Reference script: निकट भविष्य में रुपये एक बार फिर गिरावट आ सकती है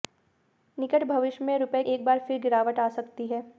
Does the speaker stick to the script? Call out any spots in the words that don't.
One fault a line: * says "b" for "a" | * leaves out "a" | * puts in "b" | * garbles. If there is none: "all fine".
all fine